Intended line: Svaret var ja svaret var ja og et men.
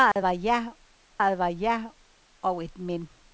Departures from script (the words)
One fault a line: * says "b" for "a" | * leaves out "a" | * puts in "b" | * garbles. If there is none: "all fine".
all fine